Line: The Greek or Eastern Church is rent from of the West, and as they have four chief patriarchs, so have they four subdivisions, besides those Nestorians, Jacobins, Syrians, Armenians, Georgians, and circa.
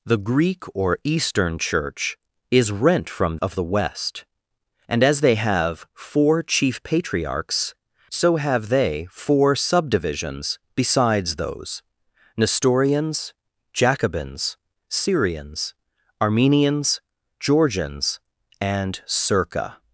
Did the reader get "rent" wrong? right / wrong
right